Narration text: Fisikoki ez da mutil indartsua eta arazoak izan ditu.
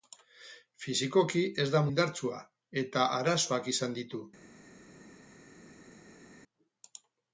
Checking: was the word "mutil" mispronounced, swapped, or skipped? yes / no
yes